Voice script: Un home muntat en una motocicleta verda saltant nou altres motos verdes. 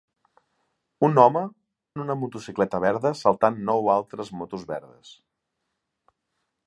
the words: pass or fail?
fail